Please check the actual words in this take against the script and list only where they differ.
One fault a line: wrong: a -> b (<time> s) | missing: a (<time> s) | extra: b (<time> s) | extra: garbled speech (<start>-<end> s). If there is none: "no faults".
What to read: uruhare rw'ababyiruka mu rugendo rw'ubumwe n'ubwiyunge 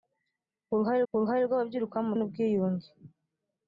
extra: uruhare (1.1 s)
missing: rugendo rw'ubumwe (2.1 s)